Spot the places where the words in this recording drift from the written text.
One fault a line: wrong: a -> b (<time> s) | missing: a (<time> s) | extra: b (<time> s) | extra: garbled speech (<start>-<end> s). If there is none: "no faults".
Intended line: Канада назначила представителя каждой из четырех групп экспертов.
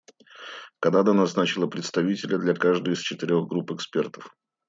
extra: для (2.4 s)